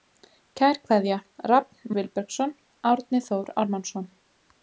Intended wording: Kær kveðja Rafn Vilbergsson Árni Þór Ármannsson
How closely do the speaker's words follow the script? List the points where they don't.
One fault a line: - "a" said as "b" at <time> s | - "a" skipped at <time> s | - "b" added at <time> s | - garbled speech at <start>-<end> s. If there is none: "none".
none